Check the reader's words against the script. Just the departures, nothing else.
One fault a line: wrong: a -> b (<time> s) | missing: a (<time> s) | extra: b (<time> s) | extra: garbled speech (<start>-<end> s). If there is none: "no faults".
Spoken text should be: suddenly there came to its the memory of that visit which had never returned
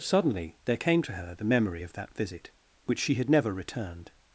wrong: its -> her (1.1 s)
extra: she (3.0 s)